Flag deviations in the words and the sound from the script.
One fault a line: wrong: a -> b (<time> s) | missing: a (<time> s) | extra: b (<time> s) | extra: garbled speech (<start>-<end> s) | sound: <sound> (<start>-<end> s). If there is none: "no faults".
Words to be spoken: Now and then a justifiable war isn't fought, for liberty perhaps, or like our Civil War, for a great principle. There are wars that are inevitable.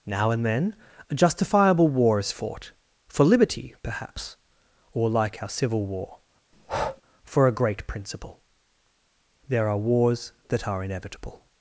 wrong: isn't -> is (2.2 s)
sound: breath (6.5-7.0 s)